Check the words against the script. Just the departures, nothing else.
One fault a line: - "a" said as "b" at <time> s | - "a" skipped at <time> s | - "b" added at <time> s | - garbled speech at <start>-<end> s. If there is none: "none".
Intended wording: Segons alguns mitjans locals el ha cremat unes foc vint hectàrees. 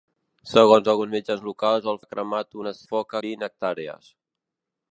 none